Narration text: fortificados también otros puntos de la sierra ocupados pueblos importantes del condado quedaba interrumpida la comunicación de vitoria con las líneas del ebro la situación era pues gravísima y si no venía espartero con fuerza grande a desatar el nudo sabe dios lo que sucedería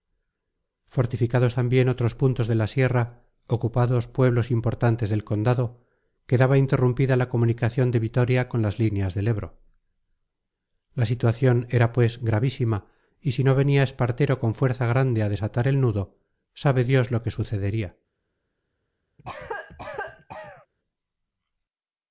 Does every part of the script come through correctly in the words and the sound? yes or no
no